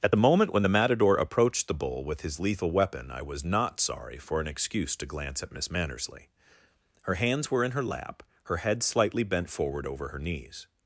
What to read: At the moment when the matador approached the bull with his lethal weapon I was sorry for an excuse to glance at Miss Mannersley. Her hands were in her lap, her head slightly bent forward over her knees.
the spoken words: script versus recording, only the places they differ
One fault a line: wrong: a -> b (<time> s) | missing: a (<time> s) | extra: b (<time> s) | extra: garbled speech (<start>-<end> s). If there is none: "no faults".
extra: not (3.4 s)